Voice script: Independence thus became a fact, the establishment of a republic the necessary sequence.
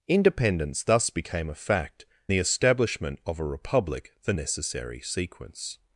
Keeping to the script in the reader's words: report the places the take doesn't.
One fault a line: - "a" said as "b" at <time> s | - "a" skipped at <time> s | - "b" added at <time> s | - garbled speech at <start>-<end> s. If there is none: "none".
none